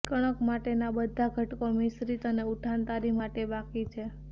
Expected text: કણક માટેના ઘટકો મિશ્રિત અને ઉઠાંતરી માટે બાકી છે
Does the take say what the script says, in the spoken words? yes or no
no